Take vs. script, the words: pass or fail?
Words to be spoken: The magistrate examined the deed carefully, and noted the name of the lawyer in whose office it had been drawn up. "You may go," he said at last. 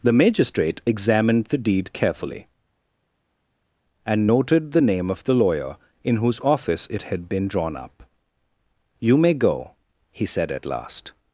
pass